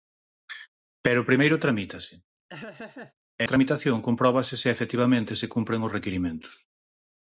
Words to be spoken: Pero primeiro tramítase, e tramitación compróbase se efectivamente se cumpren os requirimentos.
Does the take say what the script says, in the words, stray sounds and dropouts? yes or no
no